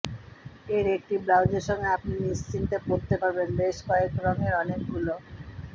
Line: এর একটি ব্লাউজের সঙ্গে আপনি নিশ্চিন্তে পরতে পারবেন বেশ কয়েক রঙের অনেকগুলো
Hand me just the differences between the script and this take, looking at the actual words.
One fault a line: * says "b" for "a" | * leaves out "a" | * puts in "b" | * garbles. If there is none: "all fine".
all fine